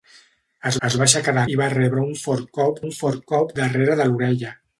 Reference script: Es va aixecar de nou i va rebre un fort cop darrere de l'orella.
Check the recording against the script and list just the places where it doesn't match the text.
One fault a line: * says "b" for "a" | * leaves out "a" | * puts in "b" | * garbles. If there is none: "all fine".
* puts in "es"
* leaves out "nou"
* puts in "un fort cop"